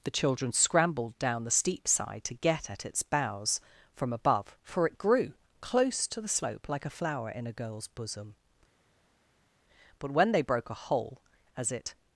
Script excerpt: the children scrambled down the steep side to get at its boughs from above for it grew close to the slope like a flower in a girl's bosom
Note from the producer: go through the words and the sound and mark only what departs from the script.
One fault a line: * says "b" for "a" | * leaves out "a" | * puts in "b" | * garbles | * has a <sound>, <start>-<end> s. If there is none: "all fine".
* puts in "but when they broke a hole as it"